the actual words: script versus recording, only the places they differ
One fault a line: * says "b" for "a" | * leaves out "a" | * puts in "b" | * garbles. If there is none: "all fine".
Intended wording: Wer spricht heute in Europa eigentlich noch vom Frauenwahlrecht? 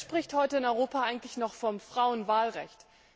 all fine